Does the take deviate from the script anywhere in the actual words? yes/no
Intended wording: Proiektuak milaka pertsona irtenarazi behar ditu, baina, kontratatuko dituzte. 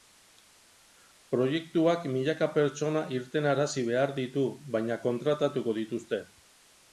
no